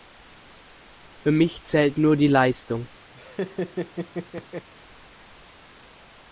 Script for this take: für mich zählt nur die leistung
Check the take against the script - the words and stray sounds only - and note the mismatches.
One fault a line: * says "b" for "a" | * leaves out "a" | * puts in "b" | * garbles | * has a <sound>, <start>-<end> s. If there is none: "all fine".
* has a laugh, 3.1-4.7 s